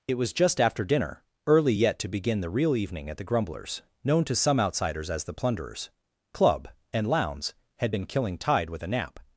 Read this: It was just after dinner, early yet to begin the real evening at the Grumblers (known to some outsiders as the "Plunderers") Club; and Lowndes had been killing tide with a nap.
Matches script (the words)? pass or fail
pass